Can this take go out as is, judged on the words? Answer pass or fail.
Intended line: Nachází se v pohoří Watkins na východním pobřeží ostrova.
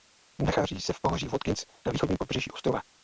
pass